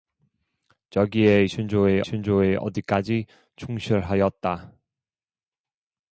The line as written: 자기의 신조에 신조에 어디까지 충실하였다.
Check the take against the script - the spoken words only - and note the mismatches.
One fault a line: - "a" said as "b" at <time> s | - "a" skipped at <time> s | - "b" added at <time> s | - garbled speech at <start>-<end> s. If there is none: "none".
none